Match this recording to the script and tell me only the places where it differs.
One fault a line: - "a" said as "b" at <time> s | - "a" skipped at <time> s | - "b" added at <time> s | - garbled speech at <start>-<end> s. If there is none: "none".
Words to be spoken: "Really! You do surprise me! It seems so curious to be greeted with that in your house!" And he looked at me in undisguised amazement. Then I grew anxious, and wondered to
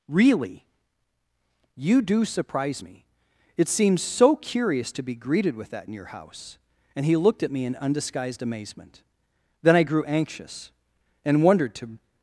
none